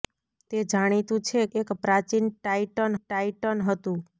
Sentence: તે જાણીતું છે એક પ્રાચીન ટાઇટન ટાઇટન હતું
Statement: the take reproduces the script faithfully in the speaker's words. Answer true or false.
true